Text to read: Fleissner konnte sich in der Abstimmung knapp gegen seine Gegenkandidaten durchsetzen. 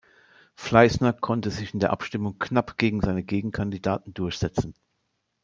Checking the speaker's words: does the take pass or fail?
pass